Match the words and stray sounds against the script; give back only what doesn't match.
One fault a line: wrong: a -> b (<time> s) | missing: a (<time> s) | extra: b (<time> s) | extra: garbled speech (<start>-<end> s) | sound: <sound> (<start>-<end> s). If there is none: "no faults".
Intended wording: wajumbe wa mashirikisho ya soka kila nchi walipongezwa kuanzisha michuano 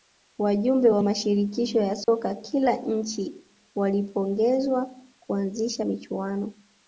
sound: dropout (2.0-2.1 s)